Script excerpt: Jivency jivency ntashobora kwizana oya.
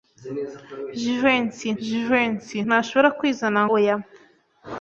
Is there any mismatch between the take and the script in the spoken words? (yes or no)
no